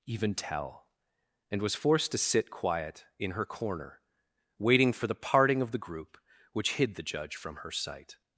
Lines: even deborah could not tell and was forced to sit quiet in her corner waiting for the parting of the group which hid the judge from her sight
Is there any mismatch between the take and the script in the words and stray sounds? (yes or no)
yes